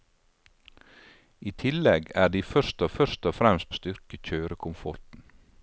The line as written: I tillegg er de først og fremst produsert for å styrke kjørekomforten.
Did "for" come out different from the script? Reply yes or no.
yes